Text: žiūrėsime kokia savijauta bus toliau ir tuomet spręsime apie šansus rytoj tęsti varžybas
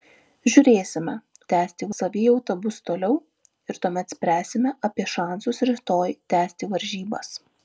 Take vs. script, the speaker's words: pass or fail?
fail